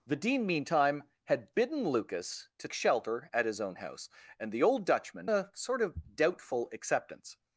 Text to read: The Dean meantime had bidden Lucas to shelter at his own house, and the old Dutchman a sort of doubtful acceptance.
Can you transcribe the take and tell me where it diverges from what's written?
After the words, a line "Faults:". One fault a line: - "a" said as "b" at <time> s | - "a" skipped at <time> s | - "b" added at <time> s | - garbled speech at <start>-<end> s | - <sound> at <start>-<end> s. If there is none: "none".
The Dean meantime had bidden Lucas to shelter at his own house, and the old Dutchman a sort of doubtful acceptance.
Faults:
none